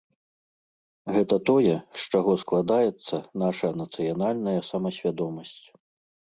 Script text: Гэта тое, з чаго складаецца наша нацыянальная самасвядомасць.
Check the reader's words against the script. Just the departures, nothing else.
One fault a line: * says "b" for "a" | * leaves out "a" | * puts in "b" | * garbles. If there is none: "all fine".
all fine